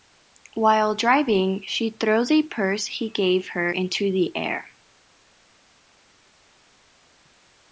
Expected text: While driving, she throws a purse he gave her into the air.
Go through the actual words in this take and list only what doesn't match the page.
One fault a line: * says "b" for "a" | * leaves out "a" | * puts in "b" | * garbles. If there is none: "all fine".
all fine